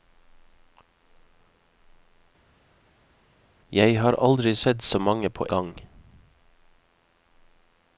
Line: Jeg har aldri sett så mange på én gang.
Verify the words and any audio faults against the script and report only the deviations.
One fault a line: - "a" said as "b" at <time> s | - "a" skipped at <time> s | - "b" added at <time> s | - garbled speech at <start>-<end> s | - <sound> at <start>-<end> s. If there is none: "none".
- "én" skipped at 5.5 s